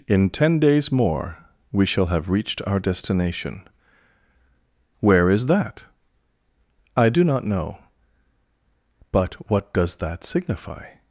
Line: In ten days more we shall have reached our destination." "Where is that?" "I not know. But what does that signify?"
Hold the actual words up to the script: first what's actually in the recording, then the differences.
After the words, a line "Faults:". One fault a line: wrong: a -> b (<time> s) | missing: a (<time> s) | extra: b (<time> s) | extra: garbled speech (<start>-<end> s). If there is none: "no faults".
In ten days more we shall have reached our destination." "Where is that?" "I do not know. But what does that signify?"
Faults:
extra: do (7.1 s)